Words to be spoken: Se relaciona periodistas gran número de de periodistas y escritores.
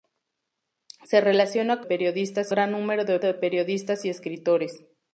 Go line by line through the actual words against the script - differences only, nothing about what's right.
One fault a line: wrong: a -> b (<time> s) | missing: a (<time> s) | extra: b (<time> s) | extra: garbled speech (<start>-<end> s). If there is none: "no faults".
no faults